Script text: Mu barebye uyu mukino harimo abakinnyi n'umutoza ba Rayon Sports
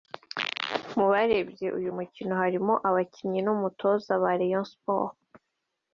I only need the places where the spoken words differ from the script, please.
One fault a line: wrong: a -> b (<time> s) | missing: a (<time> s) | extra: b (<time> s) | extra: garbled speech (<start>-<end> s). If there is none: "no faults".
no faults